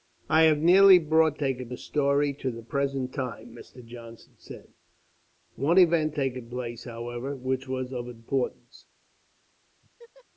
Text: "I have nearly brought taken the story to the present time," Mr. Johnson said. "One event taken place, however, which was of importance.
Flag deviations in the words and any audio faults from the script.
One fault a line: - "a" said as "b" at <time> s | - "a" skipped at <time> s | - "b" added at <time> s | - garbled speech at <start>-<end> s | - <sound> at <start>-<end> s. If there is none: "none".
- laugh at 9.8-10.2 s